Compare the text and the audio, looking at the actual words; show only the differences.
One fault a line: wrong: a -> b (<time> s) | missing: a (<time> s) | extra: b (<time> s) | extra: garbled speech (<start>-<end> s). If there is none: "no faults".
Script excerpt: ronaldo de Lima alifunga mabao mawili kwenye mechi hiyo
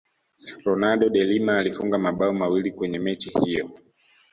no faults